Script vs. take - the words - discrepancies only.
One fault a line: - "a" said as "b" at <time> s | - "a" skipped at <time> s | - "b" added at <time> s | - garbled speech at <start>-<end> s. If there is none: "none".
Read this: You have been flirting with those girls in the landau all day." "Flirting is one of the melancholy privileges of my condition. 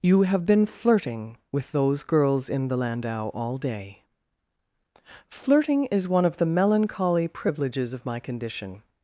none